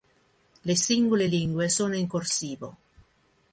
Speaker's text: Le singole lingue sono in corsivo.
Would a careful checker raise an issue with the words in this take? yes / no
no